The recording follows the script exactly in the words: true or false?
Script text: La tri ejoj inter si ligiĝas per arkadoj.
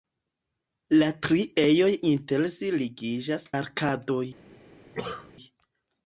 false